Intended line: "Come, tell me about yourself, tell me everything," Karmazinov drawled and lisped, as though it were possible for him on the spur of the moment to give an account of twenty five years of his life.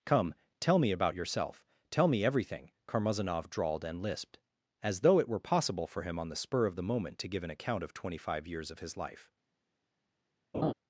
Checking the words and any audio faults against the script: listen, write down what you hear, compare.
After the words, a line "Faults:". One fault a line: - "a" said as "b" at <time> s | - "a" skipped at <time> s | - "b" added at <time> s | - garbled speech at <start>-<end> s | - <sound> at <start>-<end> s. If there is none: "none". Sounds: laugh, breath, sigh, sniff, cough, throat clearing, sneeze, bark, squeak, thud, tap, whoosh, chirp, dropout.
"Come, tell me about yourself, tell me everything," Karmazinov drawled and lisped, as though it were possible for him on the spur of the moment to give an account of twenty five years of his life.
Faults:
- laugh at 10.5-10.7 s